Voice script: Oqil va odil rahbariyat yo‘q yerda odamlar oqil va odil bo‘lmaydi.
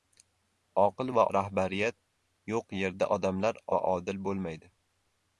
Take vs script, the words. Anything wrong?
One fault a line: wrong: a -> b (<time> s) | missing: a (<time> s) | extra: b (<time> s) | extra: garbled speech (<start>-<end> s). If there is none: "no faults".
missing: odil (1.3 s)
missing: oqil (3.6 s)